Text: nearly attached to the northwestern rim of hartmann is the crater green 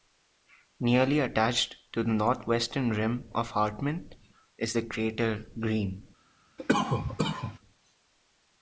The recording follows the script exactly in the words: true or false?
true